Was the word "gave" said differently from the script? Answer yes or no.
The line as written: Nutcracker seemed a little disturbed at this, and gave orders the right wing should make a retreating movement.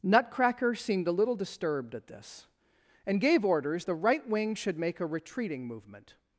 no